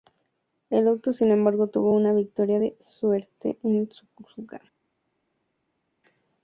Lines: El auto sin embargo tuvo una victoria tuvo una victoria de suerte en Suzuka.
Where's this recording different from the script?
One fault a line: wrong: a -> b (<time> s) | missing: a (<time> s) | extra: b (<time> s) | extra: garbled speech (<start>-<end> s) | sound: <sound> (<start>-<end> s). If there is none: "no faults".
missing: tuvo una victoria (2.6 s)